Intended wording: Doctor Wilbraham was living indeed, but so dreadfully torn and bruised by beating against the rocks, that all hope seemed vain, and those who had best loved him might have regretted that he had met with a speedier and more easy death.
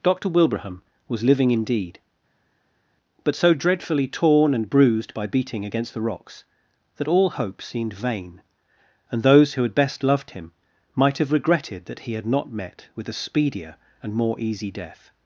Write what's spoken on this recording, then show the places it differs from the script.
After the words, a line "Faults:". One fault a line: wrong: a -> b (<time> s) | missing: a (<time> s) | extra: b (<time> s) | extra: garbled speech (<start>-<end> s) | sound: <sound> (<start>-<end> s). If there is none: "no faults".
Doctor Wilbraham was living indeed, but so dreadfully torn and bruised by beating against the rocks, that all hope seemed vain, and those who had best loved him might have regretted that he had not met with a speedier and more easy death.
Faults:
extra: not (12.3 s)